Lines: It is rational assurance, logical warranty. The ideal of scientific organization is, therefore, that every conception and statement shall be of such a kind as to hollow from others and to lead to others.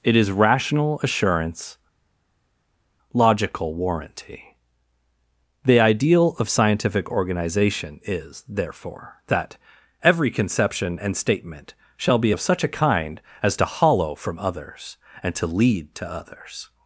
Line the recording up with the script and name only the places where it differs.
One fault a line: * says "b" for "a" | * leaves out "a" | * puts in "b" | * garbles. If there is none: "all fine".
all fine